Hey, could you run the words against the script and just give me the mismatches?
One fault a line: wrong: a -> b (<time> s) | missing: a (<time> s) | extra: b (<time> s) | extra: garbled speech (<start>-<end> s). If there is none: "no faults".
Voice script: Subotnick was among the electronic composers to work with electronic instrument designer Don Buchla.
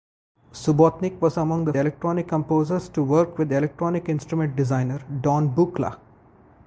no faults